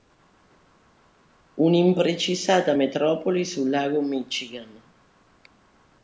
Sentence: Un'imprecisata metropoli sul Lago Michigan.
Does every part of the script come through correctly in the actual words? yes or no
yes